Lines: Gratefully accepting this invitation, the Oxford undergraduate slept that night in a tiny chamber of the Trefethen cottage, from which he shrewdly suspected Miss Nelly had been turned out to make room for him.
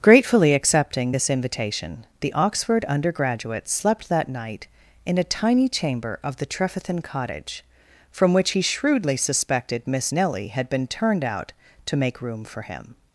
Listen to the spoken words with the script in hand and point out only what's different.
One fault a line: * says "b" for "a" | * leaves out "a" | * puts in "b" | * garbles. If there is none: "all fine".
all fine